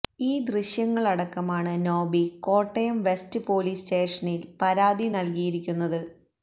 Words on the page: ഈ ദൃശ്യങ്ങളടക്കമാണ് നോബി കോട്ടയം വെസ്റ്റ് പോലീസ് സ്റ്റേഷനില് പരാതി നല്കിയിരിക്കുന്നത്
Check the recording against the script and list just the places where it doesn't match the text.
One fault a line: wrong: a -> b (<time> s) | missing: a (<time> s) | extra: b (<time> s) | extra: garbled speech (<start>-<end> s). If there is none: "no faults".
no faults